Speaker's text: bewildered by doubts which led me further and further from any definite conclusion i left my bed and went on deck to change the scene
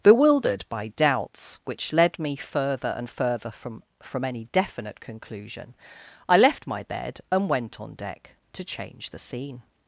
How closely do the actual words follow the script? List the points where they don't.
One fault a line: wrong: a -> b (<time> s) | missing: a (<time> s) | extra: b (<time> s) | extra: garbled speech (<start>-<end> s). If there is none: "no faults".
extra: from (4.0 s)